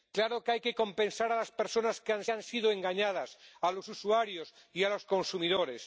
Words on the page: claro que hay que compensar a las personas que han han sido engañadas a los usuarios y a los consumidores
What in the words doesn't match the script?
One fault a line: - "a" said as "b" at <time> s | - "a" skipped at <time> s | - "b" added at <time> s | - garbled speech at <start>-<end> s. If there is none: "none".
none